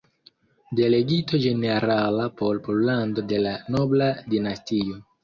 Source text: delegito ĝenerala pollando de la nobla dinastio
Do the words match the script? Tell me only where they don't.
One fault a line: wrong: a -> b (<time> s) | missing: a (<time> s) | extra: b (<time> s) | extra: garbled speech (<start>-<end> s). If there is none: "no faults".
extra: por (2.4 s)